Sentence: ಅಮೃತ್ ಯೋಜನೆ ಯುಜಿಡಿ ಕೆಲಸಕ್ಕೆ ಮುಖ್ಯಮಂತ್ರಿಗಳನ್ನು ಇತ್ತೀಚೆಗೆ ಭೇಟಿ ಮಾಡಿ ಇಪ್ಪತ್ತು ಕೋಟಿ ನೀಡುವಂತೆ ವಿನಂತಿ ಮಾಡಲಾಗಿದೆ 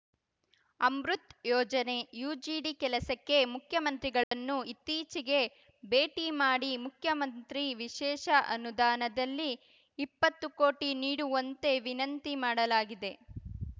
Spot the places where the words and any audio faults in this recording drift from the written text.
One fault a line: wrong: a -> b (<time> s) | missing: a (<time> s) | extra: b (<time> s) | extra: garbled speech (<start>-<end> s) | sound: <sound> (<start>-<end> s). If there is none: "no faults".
sound: dropout (4.2-4.3 s)
extra: ಮುಖ್ಯಮಂತ್ರಿ ವಿಶೇಷ ಅನುದಾನದಲ್ಲಿ (6.9 s)